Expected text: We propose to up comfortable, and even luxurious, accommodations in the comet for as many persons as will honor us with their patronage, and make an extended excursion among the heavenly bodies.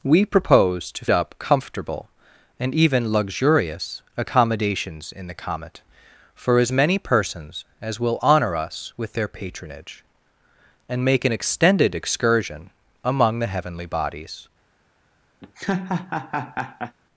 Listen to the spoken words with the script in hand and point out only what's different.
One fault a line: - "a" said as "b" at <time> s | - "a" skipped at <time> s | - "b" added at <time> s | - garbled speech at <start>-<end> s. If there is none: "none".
none